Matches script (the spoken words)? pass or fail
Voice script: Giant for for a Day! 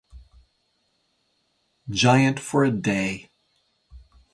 fail